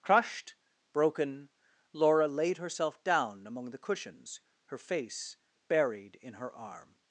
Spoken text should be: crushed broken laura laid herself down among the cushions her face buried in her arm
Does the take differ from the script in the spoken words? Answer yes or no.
no